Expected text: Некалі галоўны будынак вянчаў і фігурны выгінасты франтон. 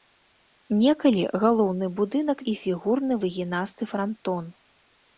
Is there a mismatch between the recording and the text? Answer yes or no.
yes